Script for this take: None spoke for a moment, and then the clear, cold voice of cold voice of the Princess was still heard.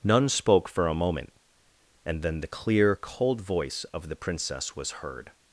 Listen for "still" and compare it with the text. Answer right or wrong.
wrong